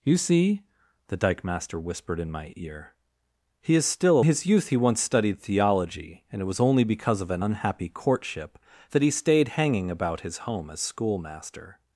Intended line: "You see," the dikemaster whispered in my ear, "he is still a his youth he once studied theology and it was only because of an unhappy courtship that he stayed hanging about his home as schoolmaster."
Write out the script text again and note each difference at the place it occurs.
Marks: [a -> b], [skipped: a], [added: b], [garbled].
"You see," the dikemaster whispered in my ear, "he is still a his youth he once studied theology and it was only because of an unhappy courtship that he stayed hanging about his home as schoolmaster."